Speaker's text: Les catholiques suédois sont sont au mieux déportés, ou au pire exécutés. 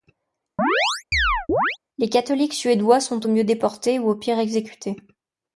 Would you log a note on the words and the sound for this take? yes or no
yes